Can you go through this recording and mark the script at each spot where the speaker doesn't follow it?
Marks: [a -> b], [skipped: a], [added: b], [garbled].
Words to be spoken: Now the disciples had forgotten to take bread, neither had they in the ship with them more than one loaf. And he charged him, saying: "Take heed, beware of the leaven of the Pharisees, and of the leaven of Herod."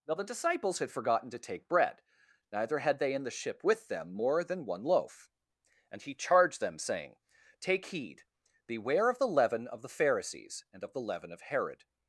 Now the disciples had forgotten to take bread, neither had they in the ship with them more than one loaf. And he charged [him, -> them] saying: "Take heed, beware of the leaven of the Pharisees, and of the leaven of Herod."